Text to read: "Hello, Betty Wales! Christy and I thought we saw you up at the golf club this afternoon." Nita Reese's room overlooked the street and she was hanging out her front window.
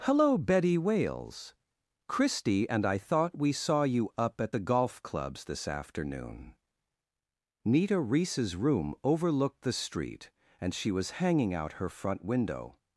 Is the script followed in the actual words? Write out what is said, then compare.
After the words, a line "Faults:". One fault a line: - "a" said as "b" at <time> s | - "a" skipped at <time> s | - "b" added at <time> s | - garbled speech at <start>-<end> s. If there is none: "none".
"Hello, Betty Wales! Christy and I thought we saw you up at the golf clubs this afternoon." Nita Reese's room overlooked the street and she was hanging out her front window.
Faults:
- "club" said as "clubs" at 5.0 s